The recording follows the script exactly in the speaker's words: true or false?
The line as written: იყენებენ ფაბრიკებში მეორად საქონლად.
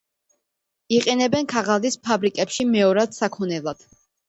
false